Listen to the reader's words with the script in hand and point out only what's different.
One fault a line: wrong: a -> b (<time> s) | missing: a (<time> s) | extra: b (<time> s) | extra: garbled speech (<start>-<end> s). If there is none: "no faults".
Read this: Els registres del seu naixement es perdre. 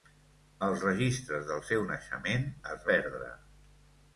no faults